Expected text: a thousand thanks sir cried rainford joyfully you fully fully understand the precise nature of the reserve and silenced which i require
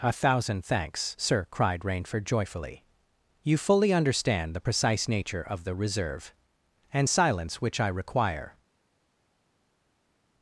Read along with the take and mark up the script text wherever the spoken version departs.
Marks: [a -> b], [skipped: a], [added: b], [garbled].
a thousand thanks sir cried rainford joyfully you fully [skipped: fully] understand the precise nature of the reserve and [silenced -> silence] which i require